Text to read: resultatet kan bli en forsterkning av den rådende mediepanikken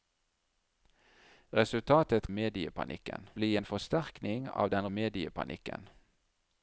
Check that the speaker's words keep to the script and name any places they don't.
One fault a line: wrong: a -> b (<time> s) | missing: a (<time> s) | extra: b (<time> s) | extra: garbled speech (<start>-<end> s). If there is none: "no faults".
wrong: kan -> mediepanikken (2.3 s)
missing: rådende (4.9 s)